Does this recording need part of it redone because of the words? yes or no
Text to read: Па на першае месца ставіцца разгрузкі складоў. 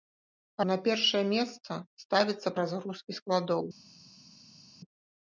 no